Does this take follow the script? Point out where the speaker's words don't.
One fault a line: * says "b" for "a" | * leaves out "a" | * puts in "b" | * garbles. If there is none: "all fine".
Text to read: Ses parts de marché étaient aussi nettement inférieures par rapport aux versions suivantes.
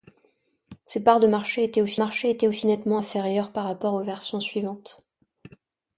* puts in "marché étaient aussi"